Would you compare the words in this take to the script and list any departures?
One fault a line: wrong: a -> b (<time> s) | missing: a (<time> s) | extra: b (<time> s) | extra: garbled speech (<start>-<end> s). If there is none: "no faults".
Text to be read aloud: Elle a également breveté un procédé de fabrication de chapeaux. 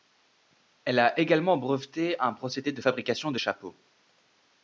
no faults